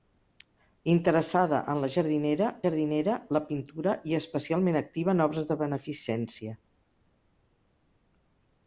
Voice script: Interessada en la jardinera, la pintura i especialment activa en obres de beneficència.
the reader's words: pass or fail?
fail